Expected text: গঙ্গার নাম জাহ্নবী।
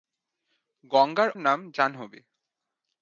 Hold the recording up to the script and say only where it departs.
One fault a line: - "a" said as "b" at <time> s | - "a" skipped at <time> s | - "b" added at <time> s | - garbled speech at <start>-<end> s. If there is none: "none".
none